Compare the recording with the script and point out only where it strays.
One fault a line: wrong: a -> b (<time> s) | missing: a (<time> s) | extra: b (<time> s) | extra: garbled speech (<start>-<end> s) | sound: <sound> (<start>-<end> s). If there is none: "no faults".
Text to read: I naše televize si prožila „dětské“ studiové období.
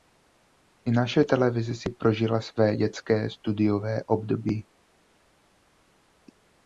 extra: své (2.4 s)